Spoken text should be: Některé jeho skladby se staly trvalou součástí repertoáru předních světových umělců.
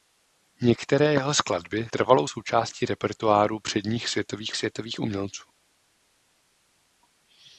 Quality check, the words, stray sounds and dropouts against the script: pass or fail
fail